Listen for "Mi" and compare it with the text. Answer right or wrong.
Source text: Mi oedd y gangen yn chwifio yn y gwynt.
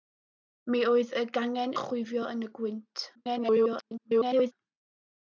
right